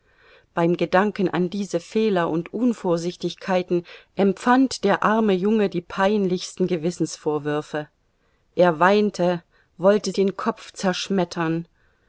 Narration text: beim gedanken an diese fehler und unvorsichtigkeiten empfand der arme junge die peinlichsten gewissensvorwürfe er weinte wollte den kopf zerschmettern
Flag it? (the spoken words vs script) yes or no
no